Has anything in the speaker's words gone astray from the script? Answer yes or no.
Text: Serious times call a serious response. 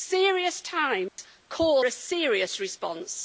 no